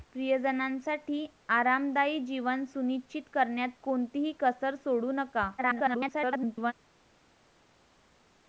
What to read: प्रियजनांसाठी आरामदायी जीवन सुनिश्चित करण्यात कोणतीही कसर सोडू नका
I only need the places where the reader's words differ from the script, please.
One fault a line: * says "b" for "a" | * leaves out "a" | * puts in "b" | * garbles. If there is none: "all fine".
* garbles